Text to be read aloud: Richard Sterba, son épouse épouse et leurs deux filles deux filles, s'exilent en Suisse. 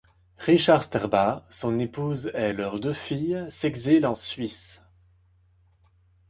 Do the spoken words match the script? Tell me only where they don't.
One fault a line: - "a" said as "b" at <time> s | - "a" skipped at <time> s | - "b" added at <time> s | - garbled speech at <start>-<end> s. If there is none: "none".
- "épouse" skipped at 2.3 s
- "deux filles" skipped at 3.4 s